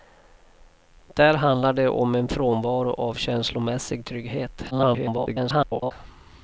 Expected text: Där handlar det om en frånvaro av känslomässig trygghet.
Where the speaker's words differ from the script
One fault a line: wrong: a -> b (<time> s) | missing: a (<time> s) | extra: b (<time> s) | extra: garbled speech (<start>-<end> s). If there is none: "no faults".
extra: garbled speech (4.7-5.9 s)